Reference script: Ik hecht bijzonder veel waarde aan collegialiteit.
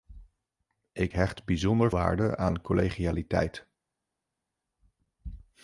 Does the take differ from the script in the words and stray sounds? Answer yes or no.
yes